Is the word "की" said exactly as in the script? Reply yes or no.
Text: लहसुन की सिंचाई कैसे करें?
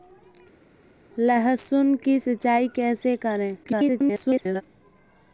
yes